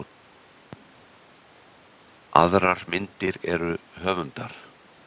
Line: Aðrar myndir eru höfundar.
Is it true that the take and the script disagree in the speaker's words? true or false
false